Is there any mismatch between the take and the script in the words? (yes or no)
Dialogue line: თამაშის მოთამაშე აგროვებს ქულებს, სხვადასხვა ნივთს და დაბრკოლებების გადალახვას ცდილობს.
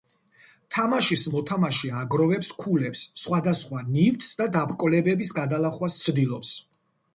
no